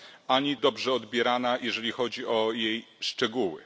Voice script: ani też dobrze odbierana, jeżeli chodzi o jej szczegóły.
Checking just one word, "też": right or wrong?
wrong